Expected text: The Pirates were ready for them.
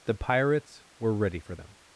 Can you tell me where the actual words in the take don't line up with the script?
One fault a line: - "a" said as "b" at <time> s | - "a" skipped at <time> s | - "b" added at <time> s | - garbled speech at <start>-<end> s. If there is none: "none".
none